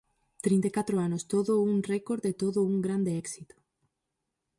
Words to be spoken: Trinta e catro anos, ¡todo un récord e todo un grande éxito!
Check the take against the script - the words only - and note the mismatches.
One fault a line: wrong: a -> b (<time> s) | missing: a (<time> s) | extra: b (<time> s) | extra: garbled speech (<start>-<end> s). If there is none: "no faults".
no faults